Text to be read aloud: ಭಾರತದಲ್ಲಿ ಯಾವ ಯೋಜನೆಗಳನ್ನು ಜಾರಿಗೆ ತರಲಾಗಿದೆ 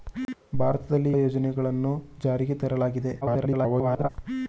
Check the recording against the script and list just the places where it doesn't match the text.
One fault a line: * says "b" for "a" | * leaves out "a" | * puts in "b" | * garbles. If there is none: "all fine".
* leaves out "ಯಾವ"
* garbles